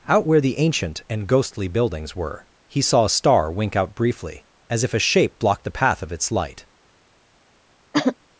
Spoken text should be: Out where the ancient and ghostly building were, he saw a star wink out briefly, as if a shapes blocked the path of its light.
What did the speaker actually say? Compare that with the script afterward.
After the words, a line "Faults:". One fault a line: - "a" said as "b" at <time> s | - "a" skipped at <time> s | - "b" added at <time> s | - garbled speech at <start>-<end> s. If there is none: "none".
Out where the ancient and ghostly buildings were, he saw a star wink out briefly, as if a shape blocked the path of its light.
Faults:
- "building" said as "buildings" at 1.7 s
- "shapes" said as "shape" at 5.0 s